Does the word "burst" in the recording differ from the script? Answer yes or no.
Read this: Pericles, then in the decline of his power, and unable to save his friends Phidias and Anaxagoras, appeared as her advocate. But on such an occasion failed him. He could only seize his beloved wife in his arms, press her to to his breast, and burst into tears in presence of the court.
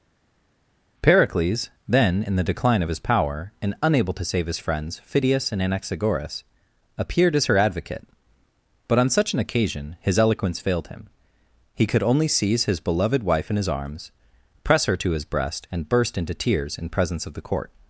no